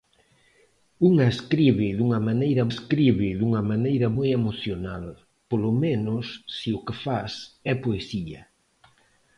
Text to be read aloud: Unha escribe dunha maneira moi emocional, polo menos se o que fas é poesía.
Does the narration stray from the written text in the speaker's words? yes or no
yes